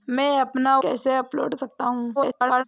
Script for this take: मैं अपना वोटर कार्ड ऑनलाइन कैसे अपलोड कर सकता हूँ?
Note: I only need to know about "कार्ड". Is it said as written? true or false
false